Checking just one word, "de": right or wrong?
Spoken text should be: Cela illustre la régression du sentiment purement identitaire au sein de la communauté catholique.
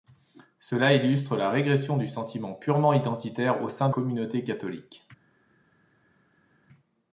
wrong